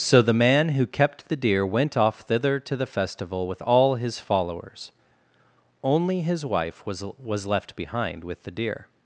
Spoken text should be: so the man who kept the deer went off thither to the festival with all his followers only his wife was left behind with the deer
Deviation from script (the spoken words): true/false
true